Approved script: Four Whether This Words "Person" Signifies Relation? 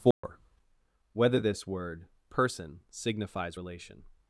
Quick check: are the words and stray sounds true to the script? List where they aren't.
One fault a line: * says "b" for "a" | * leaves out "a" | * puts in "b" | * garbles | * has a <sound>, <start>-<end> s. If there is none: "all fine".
* has a dropout, 0.1-0.2 s
* says "Word" for "Words"